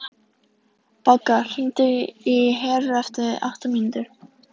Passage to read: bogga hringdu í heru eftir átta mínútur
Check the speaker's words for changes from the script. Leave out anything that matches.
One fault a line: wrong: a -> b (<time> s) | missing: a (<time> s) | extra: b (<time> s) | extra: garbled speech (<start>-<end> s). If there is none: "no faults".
no faults